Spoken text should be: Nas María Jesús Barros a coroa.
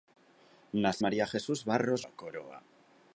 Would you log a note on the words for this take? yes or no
no